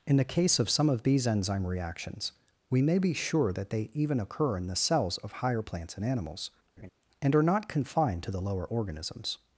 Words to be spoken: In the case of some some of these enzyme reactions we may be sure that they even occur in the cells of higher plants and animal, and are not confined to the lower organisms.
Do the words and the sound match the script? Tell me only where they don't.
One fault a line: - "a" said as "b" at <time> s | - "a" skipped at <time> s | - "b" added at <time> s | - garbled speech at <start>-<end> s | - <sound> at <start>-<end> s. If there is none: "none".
- "some" skipped at 0.9 s
- "animal" said as "animals" at 6.0 s
- laugh at 6.8-6.9 s